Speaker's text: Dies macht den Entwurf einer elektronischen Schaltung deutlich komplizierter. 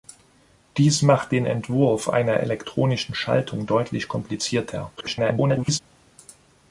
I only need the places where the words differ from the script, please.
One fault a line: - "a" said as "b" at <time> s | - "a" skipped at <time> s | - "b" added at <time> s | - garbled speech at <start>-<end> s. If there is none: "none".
- garbled speech at 5.0-5.8 s